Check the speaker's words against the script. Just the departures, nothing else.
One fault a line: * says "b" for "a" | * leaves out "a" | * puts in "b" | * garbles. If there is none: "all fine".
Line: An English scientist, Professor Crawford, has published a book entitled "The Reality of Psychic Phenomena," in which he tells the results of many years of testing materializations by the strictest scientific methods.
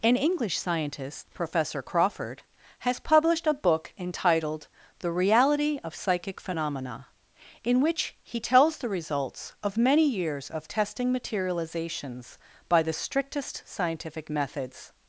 all fine